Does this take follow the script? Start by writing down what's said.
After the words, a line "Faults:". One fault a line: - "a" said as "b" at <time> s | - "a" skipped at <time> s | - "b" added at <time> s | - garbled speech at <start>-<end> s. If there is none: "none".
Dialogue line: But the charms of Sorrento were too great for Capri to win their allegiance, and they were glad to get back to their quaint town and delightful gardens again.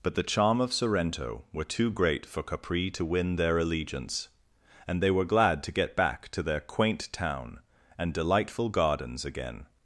But the charm of Sorrento were too great for Capri to win their allegiance, and they were glad to get back to their quaint town and delightful gardens again.
Faults:
- "charms" said as "charm" at 0.2 s